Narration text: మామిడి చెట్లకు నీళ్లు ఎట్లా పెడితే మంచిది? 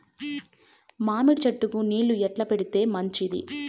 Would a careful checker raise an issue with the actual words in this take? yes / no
no